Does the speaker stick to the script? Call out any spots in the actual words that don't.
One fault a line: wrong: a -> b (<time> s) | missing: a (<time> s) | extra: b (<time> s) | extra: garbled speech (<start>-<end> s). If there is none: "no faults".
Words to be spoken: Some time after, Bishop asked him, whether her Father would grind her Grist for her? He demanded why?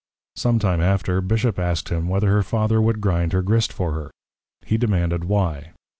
no faults